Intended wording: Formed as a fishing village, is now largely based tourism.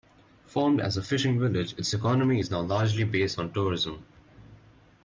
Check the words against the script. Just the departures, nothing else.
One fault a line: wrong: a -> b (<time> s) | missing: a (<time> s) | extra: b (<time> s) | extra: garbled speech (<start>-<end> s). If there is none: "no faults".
extra: its economy (1.8 s)
extra: on (3.4 s)